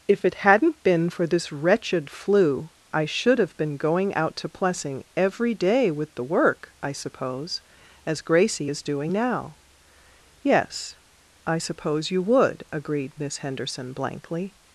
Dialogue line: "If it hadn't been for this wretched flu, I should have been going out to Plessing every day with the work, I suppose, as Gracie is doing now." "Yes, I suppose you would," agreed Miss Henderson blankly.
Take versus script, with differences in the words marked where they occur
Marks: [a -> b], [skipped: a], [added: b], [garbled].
"If it hadn't been for this wretched flu, I should have been going out to Plessing every day with the work, I suppose, as Gracie is doing now." "Yes, I suppose you would," agreed Miss Henderson blankly.